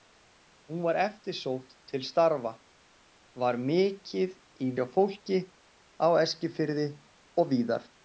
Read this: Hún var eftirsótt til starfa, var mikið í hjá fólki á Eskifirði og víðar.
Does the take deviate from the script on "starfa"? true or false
false